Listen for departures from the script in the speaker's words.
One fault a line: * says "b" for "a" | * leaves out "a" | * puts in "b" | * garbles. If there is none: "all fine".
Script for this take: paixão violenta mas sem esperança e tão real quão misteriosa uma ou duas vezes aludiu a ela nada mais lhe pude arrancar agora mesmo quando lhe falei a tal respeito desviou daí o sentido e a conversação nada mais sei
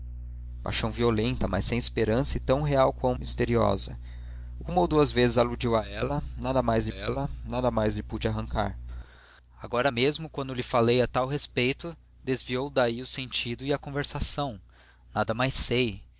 * puts in "ela nada mais"